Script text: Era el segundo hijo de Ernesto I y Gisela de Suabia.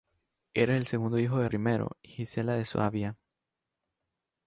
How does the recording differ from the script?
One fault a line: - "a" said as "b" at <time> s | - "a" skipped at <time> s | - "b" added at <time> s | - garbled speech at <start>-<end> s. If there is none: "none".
- "Ernesto" skipped at 1.4 s